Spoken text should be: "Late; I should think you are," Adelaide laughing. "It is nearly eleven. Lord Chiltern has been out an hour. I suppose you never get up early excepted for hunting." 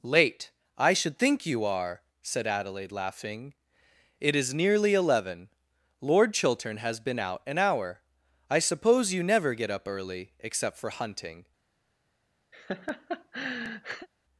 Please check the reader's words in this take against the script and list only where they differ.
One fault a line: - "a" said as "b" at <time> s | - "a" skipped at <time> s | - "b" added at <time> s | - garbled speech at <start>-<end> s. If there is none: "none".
- "said" added at 2.2 s
- "excepted" said as "except" at 10.4 s